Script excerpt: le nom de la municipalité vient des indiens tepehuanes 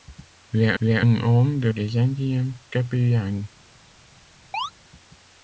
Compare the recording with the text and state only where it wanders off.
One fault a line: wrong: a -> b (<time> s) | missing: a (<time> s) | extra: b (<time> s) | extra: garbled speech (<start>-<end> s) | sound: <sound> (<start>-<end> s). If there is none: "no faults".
extra: le (0.8 s)
missing: la municipalité vient (1.7 s)
sound: chirp (4.5-4.7 s)